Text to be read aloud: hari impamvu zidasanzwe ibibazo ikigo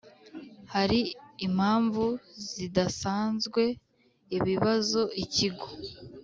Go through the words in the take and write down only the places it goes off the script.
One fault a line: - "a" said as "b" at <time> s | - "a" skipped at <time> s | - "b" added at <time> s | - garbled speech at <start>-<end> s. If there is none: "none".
none